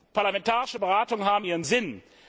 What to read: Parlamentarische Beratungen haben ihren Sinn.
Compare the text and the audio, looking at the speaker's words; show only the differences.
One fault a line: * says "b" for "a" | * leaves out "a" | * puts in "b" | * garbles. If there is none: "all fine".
all fine